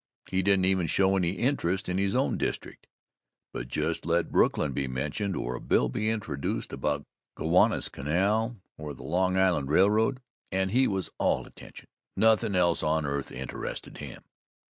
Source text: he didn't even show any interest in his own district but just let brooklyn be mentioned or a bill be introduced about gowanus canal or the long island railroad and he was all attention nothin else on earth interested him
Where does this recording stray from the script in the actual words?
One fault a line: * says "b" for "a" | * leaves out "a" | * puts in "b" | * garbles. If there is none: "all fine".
all fine